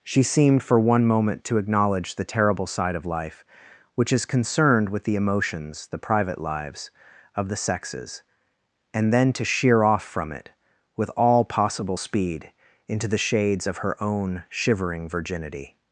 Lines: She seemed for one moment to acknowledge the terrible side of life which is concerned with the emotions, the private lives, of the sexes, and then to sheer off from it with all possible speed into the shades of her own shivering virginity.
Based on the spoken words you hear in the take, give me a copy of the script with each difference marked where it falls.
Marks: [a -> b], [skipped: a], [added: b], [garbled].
She seemed for one moment to acknowledge the terrible side of life which is concerned with the emotions, the private lives, of the sexes, and then to sheer off from it with all possible speed into the shades of her own shivering virginity.